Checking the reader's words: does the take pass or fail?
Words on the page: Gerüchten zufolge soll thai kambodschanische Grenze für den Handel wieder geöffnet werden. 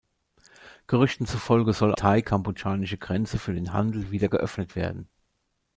pass